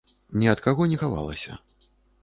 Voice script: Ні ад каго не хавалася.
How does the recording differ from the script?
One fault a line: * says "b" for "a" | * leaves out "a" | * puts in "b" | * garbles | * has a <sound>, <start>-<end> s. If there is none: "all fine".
all fine